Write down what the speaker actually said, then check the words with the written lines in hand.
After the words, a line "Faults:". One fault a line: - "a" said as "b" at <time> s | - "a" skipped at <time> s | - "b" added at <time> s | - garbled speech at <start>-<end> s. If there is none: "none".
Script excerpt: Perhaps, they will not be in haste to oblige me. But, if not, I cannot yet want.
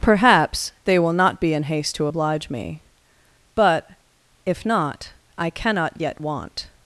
Perhaps, they will not be in haste to oblige me. But, if not, I cannot yet want.
Faults:
none